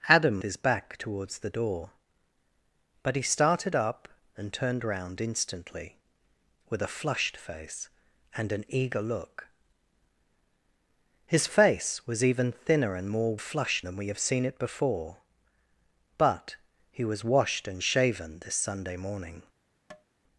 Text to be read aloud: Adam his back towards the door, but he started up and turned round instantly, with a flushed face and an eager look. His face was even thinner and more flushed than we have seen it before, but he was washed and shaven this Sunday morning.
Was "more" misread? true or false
false